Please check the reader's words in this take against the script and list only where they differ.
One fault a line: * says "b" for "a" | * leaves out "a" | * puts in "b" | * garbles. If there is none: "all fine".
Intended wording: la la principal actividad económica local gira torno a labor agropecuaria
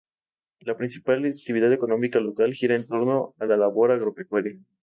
* leaves out "la"
* puts in "en"
* puts in "la"